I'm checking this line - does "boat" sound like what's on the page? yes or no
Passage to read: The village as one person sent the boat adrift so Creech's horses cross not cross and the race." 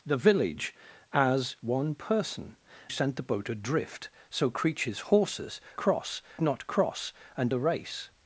yes